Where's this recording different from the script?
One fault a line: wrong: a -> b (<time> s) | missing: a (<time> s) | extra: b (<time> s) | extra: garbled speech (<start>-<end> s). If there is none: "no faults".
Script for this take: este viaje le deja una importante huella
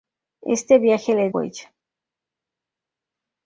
missing: deja una importante (1.3 s)